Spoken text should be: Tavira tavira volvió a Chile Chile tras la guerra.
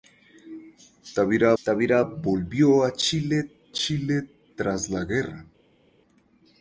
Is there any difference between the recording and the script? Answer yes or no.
no